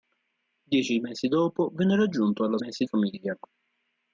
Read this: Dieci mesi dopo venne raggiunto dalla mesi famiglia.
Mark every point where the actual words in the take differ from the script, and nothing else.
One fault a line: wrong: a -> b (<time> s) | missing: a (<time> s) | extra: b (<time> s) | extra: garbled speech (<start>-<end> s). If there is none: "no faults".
no faults